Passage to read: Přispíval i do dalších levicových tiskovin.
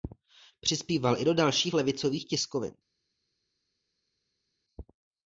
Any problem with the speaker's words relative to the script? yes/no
no